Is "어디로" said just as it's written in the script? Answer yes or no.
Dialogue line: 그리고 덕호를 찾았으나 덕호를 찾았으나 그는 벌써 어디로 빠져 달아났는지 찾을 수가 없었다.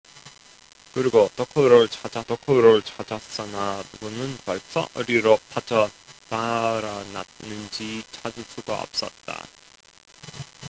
yes